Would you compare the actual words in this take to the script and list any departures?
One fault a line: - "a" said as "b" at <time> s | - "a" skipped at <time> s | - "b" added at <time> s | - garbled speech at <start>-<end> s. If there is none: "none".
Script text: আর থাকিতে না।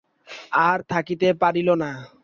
- "পারিল" added at 1.4 s